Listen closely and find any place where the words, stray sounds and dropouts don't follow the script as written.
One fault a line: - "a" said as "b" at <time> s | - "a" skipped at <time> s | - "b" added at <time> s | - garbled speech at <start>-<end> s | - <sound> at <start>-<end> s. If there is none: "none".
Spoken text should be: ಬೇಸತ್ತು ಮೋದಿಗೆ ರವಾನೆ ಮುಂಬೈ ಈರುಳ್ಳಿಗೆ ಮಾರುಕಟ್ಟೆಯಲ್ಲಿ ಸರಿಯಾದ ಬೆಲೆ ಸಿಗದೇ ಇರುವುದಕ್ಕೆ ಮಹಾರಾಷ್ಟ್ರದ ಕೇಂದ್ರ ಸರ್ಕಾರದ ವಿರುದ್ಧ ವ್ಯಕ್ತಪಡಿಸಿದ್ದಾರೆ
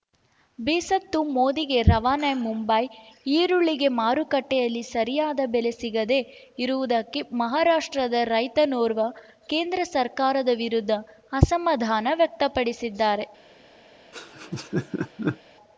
- "ರೈತನೋರ್ವ" added at 8.3 s
- "ಅಸಮಾಧಾನ" added at 11.3 s
- laugh at 14.1-15.4 s